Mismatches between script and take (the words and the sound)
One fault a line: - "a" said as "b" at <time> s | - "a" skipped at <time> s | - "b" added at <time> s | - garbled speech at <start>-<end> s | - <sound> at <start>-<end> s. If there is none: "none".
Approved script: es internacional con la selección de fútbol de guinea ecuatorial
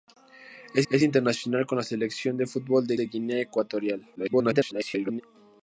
- "es" added at 0.9 s
- "de" added at 2.9 s
- garbled speech at 4.2-5.2 s